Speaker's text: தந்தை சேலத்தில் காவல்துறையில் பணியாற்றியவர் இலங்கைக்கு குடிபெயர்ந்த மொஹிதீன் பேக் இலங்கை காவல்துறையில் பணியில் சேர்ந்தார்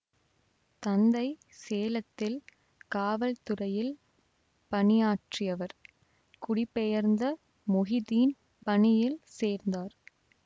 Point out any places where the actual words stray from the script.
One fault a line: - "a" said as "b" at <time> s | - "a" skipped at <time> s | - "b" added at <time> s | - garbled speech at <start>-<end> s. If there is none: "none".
- "இலங்கைக்கு" skipped at 5.8 s
- "பேக் இலங்கை காவல்துறையில்" skipped at 8.3 s